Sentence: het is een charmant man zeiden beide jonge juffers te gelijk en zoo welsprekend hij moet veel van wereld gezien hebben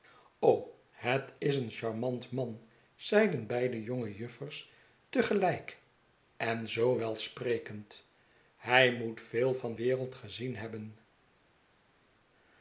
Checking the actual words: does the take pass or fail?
pass